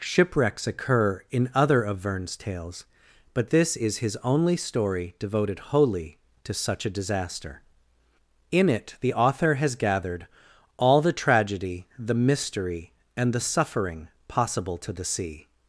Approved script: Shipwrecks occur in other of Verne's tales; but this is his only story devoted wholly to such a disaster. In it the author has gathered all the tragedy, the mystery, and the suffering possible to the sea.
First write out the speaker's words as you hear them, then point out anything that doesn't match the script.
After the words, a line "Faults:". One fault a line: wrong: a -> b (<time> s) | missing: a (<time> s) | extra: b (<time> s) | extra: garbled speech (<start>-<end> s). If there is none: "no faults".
Shipwrecks occur in other of Verne's tales; but this is his only story devoted wholly to such a disaster. In it the author has gathered all the tragedy, the mystery, and the suffering possible to the sea.
Faults:
no faults